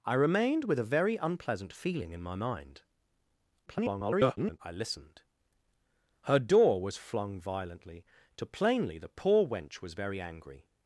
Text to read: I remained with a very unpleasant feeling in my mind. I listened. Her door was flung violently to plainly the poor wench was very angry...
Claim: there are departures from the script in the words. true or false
true